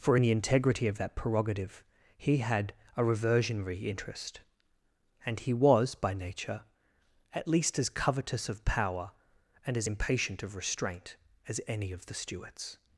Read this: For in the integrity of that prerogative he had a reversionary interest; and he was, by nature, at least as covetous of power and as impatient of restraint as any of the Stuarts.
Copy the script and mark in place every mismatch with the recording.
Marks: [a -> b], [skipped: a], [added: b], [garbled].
For in the integrity of that prerogative he had a reversionary interest; and he was, by nature, at least as covetous of power and as impatient of restraint as any of the Stuarts.